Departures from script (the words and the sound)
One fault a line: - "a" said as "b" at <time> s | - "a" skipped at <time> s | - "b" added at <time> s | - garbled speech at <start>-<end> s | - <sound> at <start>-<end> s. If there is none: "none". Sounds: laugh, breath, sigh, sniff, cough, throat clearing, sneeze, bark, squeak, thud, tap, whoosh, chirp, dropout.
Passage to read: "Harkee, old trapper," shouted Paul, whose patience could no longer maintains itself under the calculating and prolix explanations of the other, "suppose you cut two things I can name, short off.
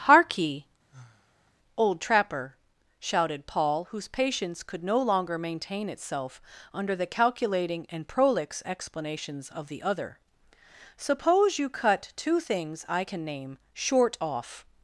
- sigh at 0.9-1.5 s
- "maintains" said as "maintain" at 5.4 s